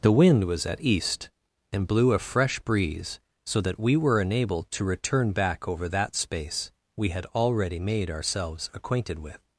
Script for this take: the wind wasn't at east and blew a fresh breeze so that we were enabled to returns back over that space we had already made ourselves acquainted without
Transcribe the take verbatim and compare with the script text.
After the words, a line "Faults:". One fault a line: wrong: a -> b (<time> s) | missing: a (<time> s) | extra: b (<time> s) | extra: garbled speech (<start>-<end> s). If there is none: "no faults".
the wind was at east and blew a fresh breeze so that we were enabled to return back over that space we had already made ourselves acquainted with
Faults:
wrong: wasn't -> was (0.5 s)
wrong: returns -> return (4.8 s)
wrong: without -> with (9.2 s)